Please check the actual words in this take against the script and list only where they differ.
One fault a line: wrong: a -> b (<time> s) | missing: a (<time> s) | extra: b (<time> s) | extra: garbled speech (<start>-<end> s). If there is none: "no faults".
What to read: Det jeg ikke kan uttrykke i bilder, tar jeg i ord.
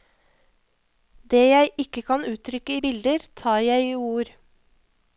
no faults